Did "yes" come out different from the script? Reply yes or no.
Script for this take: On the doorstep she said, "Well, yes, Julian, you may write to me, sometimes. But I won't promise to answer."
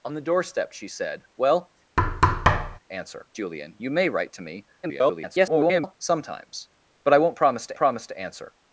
yes